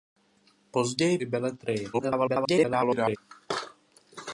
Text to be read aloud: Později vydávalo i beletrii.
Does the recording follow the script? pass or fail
fail